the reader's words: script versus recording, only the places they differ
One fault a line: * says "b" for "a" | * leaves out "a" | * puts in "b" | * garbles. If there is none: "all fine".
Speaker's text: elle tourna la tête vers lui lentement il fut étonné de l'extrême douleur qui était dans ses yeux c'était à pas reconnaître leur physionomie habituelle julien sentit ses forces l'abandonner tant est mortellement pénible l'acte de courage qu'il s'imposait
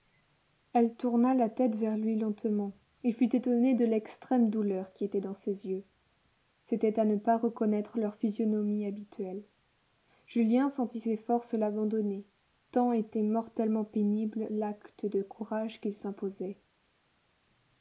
* puts in "ne"
* says "était" for "est"